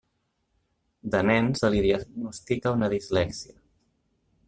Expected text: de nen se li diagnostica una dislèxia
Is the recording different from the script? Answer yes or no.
no